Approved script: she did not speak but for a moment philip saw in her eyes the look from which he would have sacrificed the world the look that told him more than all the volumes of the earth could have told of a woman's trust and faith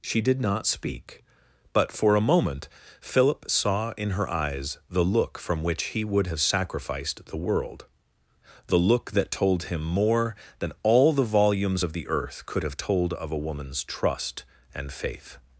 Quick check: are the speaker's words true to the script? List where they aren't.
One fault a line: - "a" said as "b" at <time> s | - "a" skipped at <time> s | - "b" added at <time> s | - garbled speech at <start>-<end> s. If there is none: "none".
none